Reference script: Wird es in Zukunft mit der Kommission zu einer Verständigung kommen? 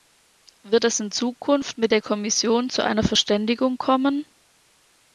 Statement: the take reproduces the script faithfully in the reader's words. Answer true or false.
true